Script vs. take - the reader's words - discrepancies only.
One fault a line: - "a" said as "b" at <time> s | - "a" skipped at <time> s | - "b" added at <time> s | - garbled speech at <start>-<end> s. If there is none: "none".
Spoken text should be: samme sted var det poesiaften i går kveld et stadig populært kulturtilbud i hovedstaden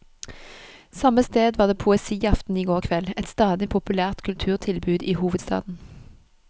none